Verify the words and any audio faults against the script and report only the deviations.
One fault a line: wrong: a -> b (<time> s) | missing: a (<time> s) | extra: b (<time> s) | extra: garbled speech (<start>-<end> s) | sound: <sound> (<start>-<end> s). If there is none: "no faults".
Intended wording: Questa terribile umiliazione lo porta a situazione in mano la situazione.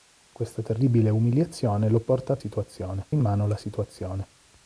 no faults